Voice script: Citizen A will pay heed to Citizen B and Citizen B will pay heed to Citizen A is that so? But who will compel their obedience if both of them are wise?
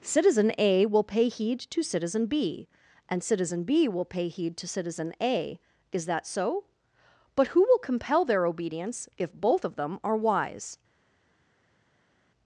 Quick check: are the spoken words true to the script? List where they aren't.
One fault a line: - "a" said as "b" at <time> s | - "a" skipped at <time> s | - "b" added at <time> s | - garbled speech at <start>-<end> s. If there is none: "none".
none